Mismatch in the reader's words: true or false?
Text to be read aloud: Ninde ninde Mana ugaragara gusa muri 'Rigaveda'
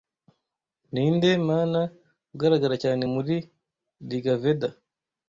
true